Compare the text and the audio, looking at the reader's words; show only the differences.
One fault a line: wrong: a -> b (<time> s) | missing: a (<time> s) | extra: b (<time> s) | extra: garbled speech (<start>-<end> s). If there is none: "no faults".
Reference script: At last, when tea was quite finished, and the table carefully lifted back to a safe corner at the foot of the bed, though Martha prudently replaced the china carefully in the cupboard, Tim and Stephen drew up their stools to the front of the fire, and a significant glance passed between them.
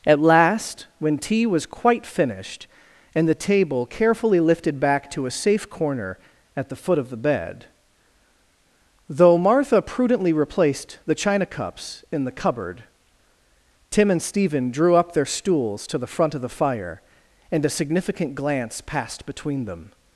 wrong: carefully -> cups (11.4 s)